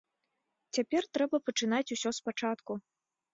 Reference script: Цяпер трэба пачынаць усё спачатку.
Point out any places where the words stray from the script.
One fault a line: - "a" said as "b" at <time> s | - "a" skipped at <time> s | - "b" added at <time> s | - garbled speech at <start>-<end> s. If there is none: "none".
none